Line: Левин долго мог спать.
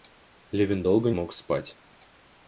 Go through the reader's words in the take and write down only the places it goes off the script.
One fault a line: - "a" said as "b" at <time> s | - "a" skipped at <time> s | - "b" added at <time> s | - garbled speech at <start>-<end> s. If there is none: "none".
none